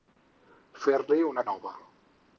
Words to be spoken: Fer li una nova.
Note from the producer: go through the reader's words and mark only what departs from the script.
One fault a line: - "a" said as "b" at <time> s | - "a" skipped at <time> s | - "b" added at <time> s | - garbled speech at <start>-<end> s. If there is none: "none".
none